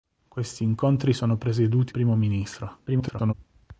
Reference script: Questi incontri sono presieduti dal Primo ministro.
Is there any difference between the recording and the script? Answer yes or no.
yes